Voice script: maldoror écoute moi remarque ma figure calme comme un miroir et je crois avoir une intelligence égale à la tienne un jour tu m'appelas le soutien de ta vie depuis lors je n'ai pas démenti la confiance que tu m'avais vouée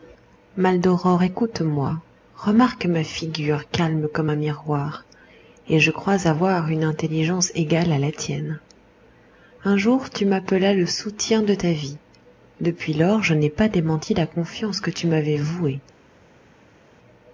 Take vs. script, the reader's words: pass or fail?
pass